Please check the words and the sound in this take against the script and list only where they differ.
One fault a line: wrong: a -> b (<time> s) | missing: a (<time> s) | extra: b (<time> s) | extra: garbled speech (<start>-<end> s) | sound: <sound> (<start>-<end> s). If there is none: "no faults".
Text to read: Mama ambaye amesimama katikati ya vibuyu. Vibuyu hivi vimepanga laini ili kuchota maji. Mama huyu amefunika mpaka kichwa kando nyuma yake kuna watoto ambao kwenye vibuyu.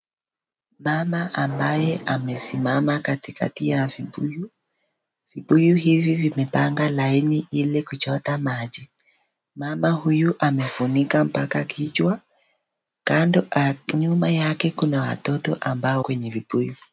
no faults